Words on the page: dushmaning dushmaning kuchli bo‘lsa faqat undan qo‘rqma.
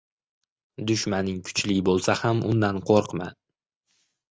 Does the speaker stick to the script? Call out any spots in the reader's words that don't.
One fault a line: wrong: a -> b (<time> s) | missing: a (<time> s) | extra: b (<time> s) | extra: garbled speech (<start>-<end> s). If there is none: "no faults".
missing: dushmaning (1.4 s)
wrong: faqat -> ham (2.2 s)